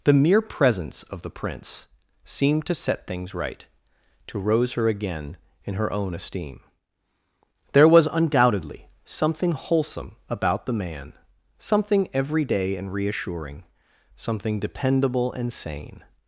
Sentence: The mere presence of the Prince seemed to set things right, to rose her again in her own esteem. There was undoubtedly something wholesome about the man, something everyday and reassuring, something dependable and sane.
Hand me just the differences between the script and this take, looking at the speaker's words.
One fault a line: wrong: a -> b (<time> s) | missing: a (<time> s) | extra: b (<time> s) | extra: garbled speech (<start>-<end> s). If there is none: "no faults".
no faults